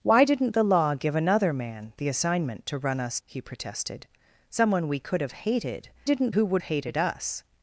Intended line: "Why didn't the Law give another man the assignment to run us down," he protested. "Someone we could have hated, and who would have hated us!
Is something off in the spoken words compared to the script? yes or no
yes